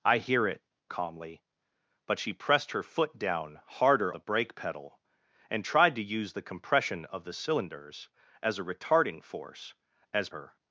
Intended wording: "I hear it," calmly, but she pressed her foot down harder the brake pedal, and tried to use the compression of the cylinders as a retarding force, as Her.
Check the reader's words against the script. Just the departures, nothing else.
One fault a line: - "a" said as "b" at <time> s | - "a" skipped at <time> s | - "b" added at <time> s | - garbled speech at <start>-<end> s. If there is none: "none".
none